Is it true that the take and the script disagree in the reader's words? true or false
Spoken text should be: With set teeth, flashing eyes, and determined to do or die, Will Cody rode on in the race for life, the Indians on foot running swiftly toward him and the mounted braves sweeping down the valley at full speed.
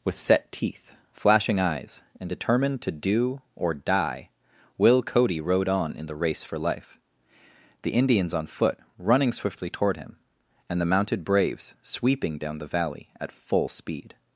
false